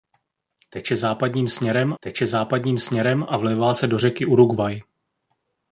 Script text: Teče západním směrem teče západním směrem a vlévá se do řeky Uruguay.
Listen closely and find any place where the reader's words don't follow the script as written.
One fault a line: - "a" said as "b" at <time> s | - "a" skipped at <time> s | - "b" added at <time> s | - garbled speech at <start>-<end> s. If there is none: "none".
none